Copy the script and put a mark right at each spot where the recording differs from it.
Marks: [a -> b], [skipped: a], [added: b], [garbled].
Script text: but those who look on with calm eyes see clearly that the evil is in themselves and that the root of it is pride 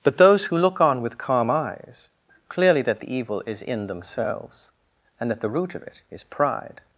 but those who look on with calm eyes [skipped: see] clearly that the evil is in themselves and that the root of it is pride